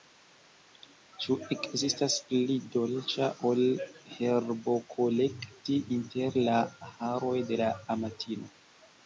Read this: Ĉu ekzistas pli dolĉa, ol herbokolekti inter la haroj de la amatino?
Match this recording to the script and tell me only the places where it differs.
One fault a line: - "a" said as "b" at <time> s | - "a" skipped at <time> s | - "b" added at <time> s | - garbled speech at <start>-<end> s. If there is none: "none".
none